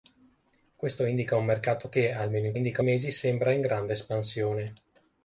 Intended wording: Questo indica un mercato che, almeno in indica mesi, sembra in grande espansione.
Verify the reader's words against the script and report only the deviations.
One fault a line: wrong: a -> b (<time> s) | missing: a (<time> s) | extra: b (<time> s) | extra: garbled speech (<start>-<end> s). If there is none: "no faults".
no faults